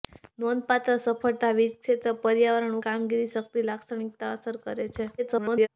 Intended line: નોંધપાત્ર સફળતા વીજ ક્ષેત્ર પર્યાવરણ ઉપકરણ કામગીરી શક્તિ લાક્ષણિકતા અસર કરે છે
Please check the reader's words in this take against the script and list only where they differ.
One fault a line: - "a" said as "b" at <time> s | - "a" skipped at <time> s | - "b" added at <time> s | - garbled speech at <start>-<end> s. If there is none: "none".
- "ઉપકરણ" skipped at 2.8 s
- garbled speech at 5.2-5.7 s